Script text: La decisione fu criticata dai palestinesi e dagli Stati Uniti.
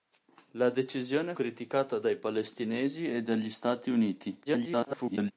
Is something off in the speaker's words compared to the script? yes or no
yes